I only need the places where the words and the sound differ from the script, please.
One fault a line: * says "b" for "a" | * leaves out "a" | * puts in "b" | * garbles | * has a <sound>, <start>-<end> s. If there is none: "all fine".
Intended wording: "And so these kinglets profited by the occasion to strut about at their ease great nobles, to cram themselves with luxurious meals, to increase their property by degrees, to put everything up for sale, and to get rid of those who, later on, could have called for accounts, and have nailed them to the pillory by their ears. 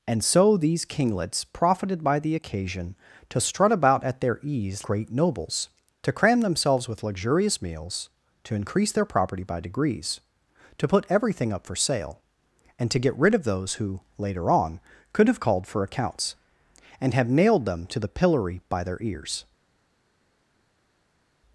all fine